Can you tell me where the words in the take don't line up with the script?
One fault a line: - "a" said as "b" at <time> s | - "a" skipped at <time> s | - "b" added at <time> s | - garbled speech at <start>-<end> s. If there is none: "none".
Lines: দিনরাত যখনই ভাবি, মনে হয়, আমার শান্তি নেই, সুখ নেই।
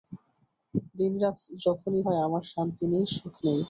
- "ভাবি মনে" skipped at 2.0 s